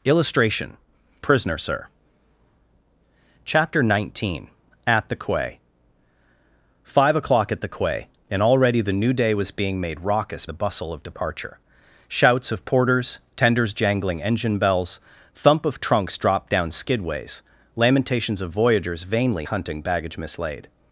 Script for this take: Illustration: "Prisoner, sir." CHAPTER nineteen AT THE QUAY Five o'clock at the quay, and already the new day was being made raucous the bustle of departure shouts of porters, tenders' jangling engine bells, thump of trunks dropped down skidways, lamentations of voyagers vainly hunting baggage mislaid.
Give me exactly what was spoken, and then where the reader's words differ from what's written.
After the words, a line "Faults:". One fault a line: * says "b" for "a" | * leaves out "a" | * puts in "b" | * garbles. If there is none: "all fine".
Illustration: "Prisoner, sir." CHAPTER nineteen AT THE QUAY Five o'clock at the quay, and already the new day was being made raucous the bustle of departure shouts of porters, tenders' jangling engine bells, thump of trunks dropped down skidways, lamentations of voyagers vainly hunting baggage mislaid.
Faults:
all fine